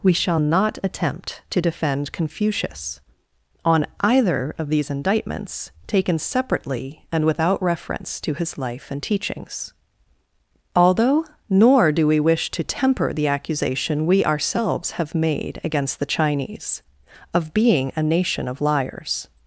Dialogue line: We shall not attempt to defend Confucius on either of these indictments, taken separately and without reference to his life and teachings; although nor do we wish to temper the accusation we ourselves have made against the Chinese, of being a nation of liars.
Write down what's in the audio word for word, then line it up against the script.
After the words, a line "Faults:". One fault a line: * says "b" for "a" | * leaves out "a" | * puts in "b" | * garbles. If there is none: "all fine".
We shall not attempt to defend Confucius on either of these indictments, taken separately and without reference to his life and teachings; although nor do we wish to temper the accusation we ourselves have made against the Chinese, of being a nation of liars.
Faults:
all fine